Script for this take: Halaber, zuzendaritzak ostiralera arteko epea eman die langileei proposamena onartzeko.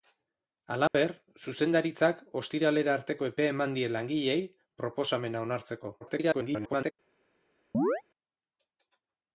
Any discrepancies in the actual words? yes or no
yes